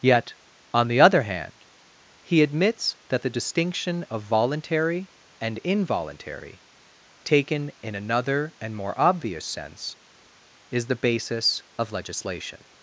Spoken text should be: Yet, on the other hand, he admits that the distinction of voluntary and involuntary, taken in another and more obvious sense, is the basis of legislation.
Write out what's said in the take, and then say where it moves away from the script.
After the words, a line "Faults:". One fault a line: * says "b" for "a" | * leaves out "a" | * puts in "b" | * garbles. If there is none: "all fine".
Yet, on the other hand, he admits that the distinction of voluntary and involuntary, taken in another and more obvious sense, is the basis of legislation.
Faults:
all fine